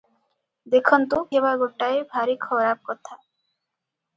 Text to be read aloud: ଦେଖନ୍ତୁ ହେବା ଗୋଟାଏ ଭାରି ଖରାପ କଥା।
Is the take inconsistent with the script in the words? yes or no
no